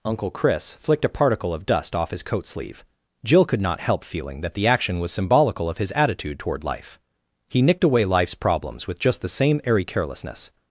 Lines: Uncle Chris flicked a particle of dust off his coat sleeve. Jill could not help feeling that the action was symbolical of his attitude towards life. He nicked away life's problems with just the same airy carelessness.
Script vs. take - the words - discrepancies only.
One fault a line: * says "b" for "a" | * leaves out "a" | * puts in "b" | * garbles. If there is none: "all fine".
* says "toward" for "towards"